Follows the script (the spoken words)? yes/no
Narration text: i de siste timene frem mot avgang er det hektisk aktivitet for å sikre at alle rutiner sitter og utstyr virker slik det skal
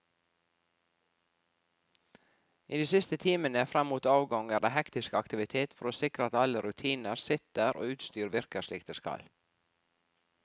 yes